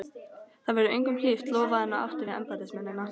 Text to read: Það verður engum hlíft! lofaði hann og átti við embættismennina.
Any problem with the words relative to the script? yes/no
no